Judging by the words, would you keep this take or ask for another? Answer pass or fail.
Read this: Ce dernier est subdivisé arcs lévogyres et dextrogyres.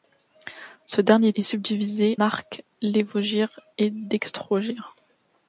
pass